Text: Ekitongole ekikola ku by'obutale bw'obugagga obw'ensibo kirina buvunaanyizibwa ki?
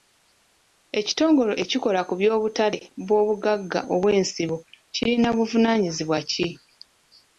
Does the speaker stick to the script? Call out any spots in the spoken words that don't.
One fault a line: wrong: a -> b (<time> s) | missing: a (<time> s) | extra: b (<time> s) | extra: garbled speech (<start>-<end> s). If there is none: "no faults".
no faults